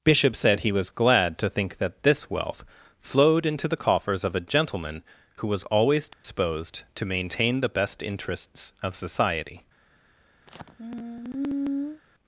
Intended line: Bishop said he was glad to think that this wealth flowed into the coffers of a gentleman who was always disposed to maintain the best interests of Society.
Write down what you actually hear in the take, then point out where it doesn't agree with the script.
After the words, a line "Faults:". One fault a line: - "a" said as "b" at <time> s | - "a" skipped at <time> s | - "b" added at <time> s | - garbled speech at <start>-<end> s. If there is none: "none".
Bishop said he was glad to think that this wealth flowed into the coffers of a gentleman who was always disposed to maintain the best interests of Society.
Faults:
none